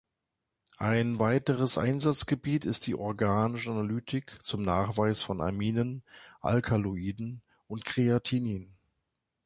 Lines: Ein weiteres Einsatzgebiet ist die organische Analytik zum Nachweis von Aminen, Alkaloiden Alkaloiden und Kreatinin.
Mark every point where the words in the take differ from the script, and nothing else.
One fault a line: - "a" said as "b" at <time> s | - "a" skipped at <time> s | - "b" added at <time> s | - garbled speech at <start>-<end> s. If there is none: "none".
- "Alkaloiden" skipped at 7.4 s